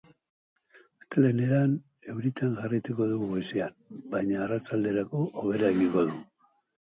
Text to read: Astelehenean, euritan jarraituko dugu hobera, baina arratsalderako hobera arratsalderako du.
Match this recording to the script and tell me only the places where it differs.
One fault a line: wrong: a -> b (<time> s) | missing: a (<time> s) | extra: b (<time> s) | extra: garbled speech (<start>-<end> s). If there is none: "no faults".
wrong: hobera -> goizean (3.3 s)
wrong: arratsalderako -> egingo (5.8 s)